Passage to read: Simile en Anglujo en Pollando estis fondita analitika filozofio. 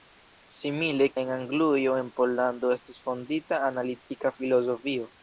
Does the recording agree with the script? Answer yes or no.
yes